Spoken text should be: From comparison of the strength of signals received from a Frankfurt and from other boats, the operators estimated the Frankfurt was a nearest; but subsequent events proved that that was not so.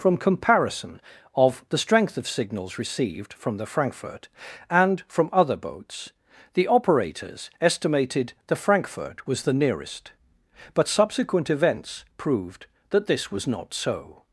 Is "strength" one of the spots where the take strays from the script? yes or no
no